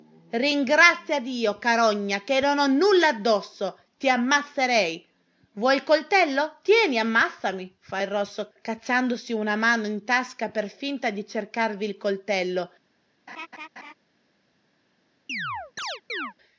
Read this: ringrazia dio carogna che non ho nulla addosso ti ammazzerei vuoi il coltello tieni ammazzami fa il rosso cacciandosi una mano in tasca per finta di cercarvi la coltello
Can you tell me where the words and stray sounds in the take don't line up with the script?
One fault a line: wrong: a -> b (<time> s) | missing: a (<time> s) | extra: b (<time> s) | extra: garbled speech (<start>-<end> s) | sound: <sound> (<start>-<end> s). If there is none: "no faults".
wrong: la -> il (11.8 s)
sound: laugh (13.3-13.9 s)
sound: chirp (15.3-16.3 s)